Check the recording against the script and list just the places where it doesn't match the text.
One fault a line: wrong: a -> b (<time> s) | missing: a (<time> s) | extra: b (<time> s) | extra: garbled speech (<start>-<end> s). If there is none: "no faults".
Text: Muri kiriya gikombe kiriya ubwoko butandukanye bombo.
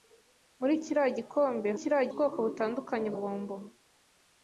no faults